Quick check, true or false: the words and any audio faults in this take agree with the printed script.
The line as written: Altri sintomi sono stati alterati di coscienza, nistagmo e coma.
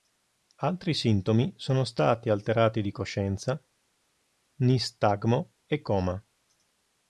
true